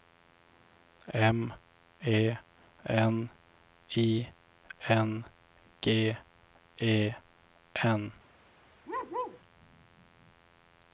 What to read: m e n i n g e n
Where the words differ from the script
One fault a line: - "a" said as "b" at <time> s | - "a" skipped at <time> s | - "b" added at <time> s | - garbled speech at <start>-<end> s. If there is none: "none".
none